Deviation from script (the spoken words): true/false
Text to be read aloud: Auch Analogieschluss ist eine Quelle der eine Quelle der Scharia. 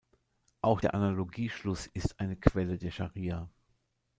true